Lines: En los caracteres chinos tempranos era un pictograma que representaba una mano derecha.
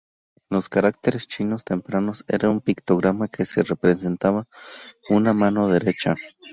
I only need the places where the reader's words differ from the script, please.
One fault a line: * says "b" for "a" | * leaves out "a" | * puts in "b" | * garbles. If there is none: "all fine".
all fine